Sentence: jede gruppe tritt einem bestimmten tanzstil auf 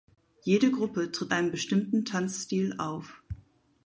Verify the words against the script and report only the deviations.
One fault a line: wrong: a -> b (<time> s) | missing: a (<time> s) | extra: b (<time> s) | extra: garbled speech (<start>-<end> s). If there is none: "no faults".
no faults